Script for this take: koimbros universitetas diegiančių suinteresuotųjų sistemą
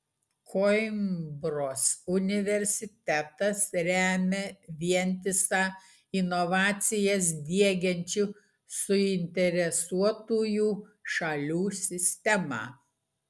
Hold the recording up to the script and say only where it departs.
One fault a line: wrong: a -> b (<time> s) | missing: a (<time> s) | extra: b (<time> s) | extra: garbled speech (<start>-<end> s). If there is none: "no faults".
extra: remia vientisą inovacijas (3.9 s)
extra: šalių (11.2 s)